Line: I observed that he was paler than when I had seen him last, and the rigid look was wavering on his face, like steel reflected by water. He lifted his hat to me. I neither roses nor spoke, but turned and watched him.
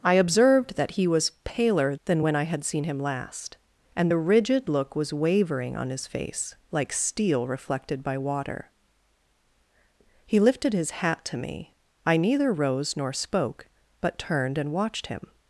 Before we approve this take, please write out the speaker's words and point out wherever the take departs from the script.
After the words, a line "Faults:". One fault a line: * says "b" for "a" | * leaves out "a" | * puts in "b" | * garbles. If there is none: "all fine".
I observed that he was paler than when I had seen him last, and the rigid look was wavering on his face, like steel reflected by water. He lifted his hat to me. I neither rose nor spoke, but turned and watched him.
Faults:
* says "rose" for "roses"